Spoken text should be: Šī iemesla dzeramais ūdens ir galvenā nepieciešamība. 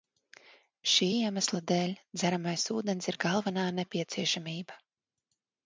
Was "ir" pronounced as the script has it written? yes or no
yes